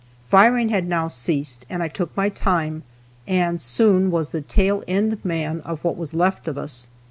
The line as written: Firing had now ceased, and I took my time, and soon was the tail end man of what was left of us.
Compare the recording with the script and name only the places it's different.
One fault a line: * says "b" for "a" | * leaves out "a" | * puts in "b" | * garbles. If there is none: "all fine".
all fine